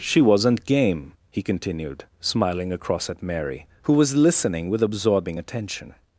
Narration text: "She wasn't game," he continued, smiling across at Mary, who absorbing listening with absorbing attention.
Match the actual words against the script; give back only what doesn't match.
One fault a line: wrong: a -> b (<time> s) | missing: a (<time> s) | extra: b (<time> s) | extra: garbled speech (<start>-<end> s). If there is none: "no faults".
wrong: absorbing -> was (3.9 s)